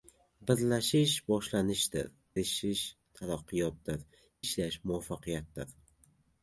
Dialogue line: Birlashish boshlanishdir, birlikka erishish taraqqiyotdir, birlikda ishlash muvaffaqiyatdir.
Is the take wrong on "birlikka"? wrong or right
wrong